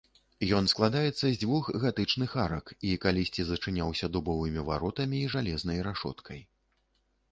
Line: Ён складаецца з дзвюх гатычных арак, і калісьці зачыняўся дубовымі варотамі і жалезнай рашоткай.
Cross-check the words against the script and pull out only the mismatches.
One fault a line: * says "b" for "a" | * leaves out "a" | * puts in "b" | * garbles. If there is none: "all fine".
all fine